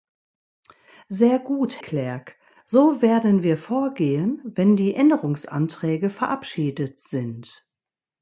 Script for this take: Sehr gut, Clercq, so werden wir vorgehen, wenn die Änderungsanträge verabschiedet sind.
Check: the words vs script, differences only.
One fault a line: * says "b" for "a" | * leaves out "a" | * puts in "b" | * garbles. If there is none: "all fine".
all fine